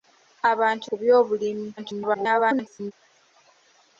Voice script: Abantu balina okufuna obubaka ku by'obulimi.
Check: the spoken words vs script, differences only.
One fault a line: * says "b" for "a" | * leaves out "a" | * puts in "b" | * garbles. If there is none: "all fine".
* leaves out "balina okufuna obubaka"
* garbles